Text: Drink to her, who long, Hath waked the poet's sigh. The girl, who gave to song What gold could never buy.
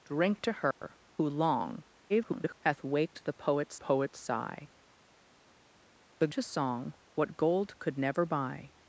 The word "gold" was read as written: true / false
true